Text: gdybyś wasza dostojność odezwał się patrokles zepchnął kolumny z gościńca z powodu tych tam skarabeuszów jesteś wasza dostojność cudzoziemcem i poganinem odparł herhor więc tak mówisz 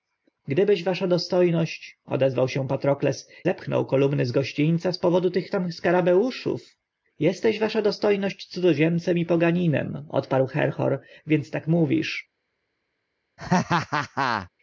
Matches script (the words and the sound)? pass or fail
fail